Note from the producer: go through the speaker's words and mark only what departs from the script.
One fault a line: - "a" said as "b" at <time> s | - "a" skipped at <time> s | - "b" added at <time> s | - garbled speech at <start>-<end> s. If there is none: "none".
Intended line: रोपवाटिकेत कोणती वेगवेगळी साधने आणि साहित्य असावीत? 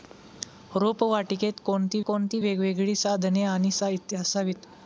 - "कोणती" added at 2.1 s